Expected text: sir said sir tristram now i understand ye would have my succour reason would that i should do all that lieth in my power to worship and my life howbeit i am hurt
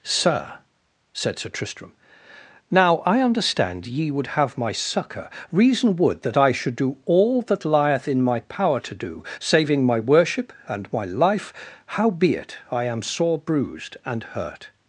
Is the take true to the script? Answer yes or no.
no